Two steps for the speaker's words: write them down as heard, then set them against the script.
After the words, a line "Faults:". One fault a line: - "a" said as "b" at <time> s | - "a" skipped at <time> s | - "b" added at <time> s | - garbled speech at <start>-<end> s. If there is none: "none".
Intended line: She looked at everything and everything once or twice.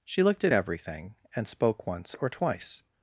She looked at everything and spoke once or twice.
Faults:
- "everything" said as "spoke" at 1.5 s